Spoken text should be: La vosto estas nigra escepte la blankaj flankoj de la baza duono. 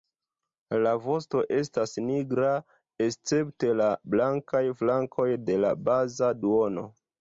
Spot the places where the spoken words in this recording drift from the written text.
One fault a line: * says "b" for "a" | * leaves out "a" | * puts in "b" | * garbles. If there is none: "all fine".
all fine